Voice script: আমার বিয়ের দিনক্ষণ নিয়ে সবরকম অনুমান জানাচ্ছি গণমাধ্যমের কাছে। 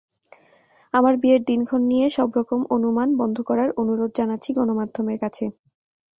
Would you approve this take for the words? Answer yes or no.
no